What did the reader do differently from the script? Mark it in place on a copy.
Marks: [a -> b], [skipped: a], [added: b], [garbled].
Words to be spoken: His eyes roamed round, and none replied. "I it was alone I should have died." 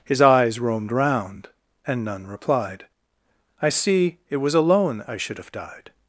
His eyes roamed round, and none replied. "I [added: see] it was alone I should have died."